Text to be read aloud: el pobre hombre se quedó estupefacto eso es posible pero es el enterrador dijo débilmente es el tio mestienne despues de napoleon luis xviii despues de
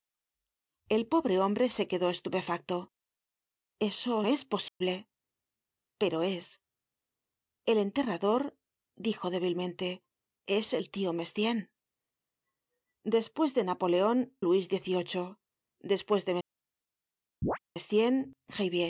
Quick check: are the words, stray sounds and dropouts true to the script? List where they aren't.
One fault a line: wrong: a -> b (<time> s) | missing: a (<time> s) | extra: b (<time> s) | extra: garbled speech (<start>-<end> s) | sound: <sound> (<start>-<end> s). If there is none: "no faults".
sound: dropout (4.7-4.8 s)
sound: chirp (17.4-17.6 s)